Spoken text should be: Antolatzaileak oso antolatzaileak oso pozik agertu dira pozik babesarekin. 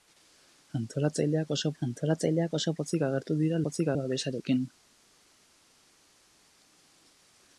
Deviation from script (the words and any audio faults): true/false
false